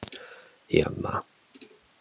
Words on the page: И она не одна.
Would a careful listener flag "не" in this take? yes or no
yes